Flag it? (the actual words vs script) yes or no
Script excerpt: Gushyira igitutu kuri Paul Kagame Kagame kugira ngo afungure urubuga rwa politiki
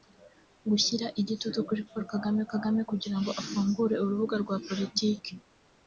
no